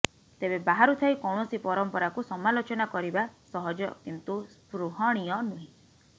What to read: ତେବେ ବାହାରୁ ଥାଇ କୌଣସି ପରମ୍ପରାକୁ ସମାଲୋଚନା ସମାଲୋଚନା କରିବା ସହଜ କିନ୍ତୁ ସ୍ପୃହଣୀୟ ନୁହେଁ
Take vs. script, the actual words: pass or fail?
fail